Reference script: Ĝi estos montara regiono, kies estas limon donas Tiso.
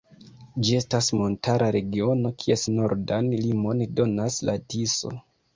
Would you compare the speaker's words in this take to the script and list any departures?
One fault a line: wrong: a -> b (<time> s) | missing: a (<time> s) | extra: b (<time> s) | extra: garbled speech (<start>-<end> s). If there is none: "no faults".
wrong: estos -> estas (0.8 s)
wrong: estas -> nordan (2.7 s)
extra: la (4.5 s)